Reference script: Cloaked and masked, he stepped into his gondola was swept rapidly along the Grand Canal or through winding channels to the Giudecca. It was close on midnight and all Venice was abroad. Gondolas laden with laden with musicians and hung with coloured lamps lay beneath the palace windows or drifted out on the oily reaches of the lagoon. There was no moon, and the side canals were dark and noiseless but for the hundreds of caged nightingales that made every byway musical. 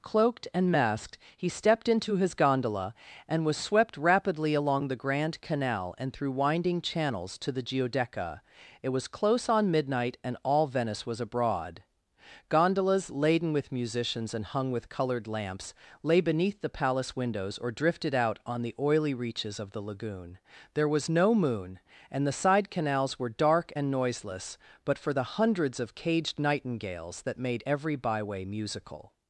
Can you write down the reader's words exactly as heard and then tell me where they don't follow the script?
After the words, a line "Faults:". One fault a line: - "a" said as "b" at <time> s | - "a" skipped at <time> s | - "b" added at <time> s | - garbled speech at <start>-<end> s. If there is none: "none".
Cloaked and masked, he stepped into his gondola and was swept rapidly along the Grand Canal and through winding channels to the Giudecca. It was close on midnight and all Venice was abroad. Gondolas laden with musicians and hung with coloured lamps lay beneath the palace windows or drifted out on the oily reaches of the lagoon. There was no moon, and the side canals were dark and noiseless but for the hundreds of caged nightingales that made every byway musical.
Faults:
- "and" added at 3.3 s
- "or" said as "and" at 6.0 s
- "laden with" skipped at 13.7 s